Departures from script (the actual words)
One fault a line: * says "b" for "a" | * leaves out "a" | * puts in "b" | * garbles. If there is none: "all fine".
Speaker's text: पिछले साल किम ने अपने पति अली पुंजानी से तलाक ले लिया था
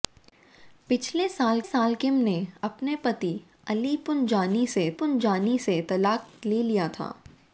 * puts in "साल"
* puts in "पुंजानी से"